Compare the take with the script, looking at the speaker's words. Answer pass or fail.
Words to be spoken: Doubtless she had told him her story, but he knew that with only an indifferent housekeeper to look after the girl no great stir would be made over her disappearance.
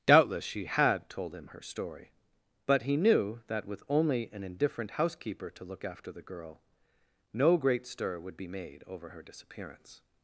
pass